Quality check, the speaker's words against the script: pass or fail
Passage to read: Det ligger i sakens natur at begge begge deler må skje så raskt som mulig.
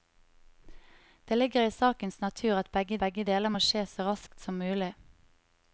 pass